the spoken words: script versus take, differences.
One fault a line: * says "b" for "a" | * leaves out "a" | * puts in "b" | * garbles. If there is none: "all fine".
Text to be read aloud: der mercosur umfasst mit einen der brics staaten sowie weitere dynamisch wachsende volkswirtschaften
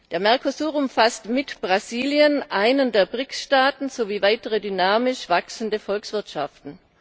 * puts in "brasilien"